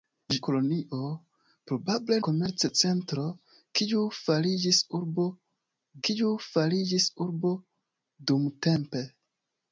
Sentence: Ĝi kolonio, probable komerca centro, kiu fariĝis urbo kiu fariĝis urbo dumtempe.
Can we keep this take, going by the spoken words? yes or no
yes